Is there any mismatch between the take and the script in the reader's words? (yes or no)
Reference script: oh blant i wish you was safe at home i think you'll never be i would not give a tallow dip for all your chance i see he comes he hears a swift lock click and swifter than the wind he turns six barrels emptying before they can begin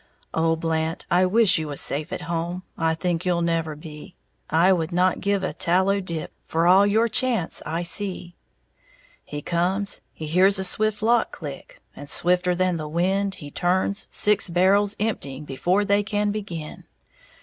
no